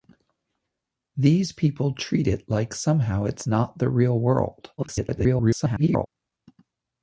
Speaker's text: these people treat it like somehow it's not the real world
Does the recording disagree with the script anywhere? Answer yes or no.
yes